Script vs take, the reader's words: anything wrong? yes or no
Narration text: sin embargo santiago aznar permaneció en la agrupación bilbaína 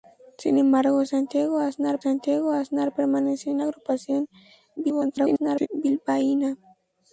yes